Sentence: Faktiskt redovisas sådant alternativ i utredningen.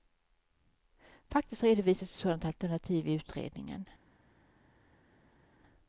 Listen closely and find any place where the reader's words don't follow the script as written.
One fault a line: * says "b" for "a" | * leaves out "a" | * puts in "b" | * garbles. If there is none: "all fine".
* puts in "ett"